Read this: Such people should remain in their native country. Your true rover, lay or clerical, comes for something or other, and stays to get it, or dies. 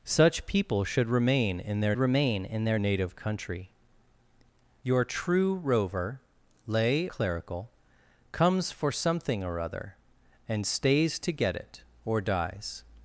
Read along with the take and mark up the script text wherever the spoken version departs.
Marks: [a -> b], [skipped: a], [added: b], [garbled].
Such people should remain in their [added: remain in their] native country. Your true rover, lay [skipped: or] clerical, comes for something or other, and stays to get it, or dies.